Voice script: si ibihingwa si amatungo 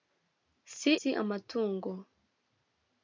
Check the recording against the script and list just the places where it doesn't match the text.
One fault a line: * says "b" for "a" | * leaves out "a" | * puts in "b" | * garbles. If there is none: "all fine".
* leaves out "ibihingwa"